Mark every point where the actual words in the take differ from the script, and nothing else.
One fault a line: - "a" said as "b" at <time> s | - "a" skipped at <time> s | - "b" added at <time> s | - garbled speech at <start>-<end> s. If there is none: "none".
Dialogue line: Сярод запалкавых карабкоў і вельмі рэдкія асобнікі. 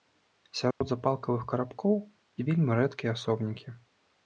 none